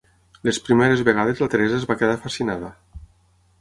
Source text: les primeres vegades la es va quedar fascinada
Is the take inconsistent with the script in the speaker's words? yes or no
yes